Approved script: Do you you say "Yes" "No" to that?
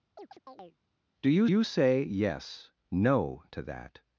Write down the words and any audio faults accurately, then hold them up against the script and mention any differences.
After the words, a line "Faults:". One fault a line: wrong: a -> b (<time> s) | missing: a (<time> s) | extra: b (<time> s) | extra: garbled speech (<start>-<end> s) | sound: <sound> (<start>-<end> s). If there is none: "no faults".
Do you you say "Yes" "No" to that?
Faults:
sound: chirp (0.2-0.8 s)